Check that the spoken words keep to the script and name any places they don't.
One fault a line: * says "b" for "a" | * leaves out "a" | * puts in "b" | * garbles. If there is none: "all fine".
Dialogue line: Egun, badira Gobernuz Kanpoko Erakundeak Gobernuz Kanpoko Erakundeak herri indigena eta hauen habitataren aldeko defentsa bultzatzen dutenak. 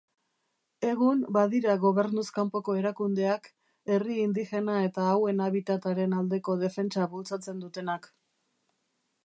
* leaves out "Gobernuz Kanpoko Erakundeak"